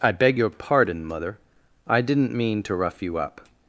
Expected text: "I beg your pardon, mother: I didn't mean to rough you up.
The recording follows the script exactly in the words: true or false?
true